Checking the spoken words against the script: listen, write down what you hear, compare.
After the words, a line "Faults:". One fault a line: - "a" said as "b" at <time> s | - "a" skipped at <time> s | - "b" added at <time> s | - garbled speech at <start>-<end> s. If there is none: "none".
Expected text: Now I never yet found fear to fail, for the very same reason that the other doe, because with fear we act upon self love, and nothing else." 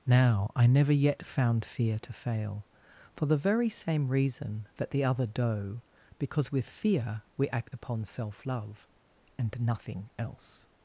Now I never yet found fear to fail, for the very same reason that the other doe, because with fear we act upon self love, and nothing else."
Faults:
none